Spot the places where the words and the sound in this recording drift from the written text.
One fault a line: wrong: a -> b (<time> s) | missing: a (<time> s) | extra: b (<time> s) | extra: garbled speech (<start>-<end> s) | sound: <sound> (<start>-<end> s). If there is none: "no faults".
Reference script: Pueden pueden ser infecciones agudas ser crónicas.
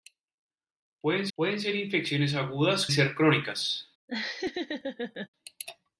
sound: laugh (4.1-5.3 s)